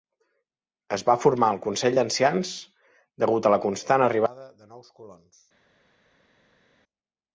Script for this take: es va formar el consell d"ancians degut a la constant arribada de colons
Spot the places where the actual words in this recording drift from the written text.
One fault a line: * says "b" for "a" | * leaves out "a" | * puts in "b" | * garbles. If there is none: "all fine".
* puts in "nous"